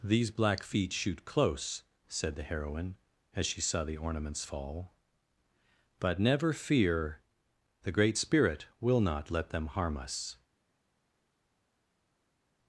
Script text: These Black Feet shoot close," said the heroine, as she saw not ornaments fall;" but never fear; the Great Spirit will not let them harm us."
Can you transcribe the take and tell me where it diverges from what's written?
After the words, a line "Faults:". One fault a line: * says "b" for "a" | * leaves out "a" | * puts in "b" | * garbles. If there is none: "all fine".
These Black Feet shoot close," said the heroine, as she saw the ornaments fall;" but never fear; the Great Spirit will not let them harm us."
Faults:
* says "the" for "not"